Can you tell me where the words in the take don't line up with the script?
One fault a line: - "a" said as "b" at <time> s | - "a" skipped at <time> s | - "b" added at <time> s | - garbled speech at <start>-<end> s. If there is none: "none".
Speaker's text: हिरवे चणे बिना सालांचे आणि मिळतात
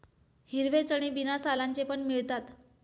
- "आणि" said as "पण" at 1.8 s